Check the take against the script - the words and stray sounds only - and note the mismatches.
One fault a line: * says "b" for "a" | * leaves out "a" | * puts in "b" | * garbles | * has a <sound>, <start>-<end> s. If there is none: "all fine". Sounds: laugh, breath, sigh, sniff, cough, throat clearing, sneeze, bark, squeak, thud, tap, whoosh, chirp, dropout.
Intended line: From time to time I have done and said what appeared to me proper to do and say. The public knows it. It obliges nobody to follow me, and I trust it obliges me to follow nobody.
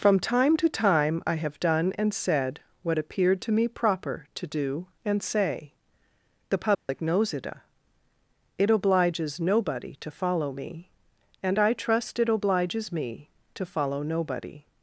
* has a dropout, 6.7-6.9 s